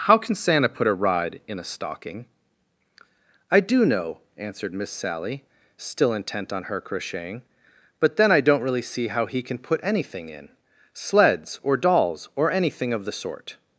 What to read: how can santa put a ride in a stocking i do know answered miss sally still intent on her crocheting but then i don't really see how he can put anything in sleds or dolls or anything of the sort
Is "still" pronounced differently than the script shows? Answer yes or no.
no